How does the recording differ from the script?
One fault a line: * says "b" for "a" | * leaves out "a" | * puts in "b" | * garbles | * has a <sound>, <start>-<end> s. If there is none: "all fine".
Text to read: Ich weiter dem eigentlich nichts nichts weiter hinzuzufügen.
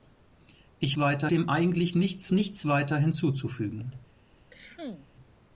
* has a cough, 4.5-5.1 s